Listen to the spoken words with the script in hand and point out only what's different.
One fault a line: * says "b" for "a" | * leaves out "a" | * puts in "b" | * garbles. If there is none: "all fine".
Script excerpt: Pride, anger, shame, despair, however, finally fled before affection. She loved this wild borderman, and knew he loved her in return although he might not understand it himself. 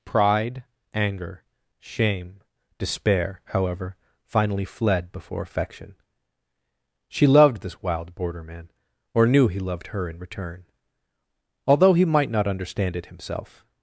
* says "or" for "and"